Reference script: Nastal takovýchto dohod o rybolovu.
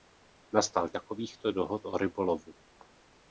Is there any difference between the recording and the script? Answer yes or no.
no